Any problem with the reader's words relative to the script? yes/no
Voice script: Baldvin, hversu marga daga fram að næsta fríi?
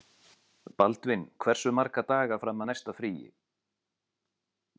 no